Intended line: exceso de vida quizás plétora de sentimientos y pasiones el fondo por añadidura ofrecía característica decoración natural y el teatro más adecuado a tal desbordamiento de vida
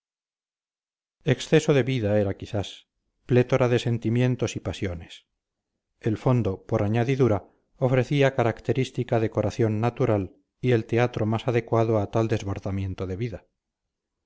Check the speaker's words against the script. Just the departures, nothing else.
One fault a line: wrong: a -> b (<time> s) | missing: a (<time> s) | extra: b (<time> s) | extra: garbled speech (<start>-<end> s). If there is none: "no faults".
extra: era (2.2 s)